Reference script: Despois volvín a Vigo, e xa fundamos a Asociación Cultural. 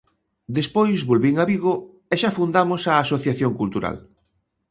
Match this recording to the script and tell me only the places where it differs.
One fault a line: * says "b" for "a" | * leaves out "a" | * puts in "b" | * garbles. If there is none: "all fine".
all fine